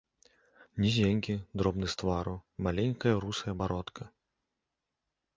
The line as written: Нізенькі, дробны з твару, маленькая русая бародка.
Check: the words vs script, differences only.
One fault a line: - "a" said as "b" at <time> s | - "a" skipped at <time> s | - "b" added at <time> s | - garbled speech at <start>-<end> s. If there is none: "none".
none